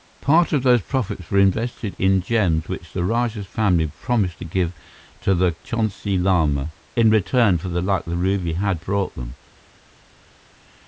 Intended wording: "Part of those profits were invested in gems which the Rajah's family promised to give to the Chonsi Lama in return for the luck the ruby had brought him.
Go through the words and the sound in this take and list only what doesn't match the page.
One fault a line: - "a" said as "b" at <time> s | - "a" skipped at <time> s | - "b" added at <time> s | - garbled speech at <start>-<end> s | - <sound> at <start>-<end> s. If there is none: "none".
- "him" said as "them" at 9.2 s